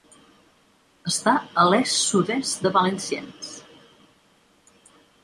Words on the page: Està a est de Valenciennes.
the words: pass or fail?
fail